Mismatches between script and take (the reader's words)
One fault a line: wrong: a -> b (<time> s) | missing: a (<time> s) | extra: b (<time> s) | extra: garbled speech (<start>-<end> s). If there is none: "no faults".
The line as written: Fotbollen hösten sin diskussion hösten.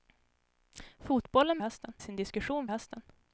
no faults